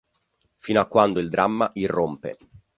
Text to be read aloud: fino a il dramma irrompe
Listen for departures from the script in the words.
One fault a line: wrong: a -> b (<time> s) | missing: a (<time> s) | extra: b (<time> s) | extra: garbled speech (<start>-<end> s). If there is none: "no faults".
extra: quando (0.9 s)